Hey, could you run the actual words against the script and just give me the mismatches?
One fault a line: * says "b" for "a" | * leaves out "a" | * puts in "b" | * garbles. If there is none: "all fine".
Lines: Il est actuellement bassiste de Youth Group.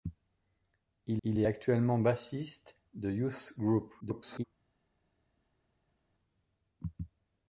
* puts in "il"
* garbles